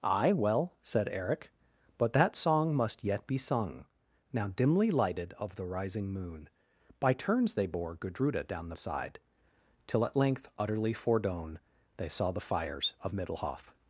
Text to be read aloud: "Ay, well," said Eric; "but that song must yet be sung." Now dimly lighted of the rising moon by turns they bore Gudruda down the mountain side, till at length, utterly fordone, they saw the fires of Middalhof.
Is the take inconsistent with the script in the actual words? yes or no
yes